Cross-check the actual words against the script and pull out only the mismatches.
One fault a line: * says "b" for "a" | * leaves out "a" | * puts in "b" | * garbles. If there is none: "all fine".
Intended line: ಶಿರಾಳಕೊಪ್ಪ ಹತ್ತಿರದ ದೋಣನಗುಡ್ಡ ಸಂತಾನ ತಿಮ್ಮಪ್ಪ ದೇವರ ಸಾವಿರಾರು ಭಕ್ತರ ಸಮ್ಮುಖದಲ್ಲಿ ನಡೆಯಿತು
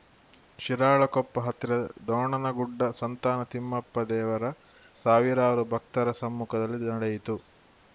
all fine